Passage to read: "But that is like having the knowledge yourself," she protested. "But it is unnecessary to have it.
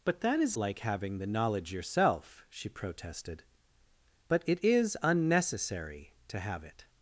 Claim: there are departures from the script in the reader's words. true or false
false